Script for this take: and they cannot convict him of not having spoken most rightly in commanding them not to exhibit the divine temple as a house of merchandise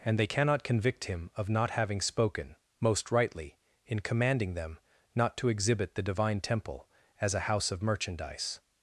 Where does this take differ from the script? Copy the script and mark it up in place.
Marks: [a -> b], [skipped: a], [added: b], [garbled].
and they cannot convict him of not having spoken most rightly in commanding them not to exhibit the divine temple as a house of merchandise